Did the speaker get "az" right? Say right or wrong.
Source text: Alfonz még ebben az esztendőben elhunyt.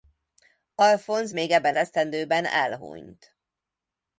wrong